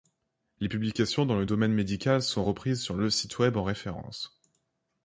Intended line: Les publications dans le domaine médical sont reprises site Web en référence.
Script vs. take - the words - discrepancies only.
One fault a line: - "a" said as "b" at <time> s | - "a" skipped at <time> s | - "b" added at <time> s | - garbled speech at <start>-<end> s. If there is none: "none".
- "sur le" added at 2.8 s